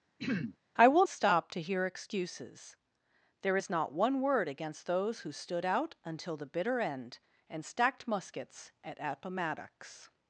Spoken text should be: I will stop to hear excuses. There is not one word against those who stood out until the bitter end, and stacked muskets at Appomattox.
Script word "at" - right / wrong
right